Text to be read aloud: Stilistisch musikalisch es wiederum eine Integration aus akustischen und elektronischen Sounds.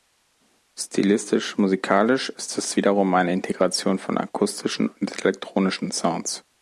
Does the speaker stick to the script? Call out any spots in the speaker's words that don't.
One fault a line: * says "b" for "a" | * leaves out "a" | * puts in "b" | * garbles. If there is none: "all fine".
* puts in "ist"
* says "von" for "aus"